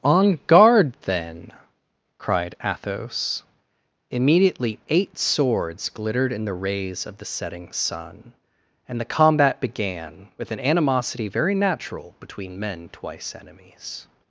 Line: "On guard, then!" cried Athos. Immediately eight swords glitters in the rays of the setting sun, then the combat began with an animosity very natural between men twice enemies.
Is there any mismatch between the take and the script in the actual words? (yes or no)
yes